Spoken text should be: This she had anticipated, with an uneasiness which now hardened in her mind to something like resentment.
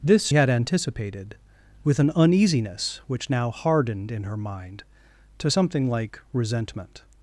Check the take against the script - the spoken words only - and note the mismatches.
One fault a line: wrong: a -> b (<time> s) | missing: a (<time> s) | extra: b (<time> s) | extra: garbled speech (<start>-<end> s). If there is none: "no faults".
missing: she (0.3 s)